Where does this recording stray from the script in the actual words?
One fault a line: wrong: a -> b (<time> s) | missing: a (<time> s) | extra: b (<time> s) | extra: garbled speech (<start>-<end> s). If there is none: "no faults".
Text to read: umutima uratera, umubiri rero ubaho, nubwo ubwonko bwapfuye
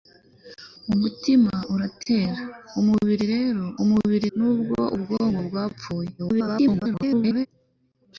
wrong: ubaho -> umubiri (3.8 s)
extra: garbled speech (6.2-7.5 s)